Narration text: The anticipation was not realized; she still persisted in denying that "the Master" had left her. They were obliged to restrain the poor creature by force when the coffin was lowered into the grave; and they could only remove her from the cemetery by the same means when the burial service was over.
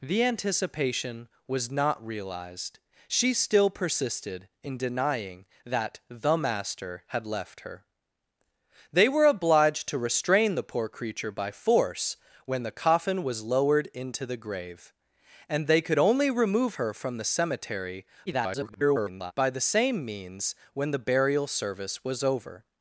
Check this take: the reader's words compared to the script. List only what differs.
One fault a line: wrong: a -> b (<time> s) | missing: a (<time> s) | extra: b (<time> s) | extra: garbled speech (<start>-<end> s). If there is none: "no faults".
extra: garbled speech (18.3-19.3 s)